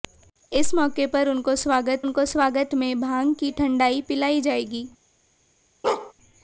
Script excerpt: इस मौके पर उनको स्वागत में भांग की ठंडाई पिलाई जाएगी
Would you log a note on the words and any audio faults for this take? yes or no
yes